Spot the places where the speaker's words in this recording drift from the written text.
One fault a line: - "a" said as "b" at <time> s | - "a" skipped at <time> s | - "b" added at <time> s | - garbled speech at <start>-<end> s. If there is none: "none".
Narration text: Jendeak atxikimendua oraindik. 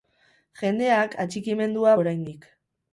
none